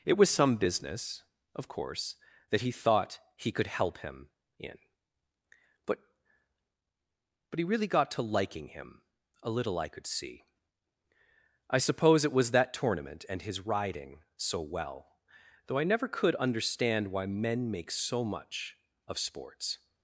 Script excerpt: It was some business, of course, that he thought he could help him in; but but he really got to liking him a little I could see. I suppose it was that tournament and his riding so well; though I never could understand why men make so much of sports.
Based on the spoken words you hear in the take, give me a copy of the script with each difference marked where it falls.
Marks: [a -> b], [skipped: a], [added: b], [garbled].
It was some business, of course, that he thought he could help him in; but but he really got to liking him a little I could see. I suppose it was that tournament and his riding so well; though I never could understand why men make so much of sports.